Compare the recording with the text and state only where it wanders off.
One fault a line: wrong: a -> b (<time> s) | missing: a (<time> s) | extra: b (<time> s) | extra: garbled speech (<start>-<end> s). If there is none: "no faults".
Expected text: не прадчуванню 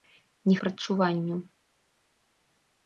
no faults